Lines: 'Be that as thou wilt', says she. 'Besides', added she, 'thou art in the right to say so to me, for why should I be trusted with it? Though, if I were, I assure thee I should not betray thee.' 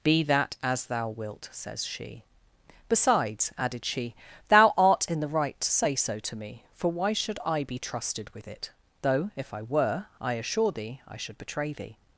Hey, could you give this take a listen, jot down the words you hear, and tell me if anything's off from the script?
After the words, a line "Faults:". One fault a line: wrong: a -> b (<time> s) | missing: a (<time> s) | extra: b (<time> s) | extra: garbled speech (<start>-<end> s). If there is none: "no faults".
'Be that as thou wilt', says she. 'Besides', added she, 'thou art in the right to say so to me, for why should I be trusted with it? Though, if I were, I assure thee I should betray thee.'
Faults:
missing: not (11.4 s)